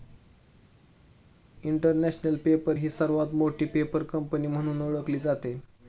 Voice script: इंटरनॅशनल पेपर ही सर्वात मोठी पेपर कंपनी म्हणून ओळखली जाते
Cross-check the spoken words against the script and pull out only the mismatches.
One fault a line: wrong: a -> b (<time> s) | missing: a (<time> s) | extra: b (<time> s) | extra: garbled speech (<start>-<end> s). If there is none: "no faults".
no faults